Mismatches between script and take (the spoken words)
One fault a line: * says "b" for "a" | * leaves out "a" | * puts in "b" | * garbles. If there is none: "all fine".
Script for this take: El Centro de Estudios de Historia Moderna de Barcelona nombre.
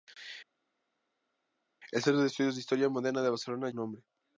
all fine